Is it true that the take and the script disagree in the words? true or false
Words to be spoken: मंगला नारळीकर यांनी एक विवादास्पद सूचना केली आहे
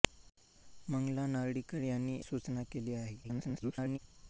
true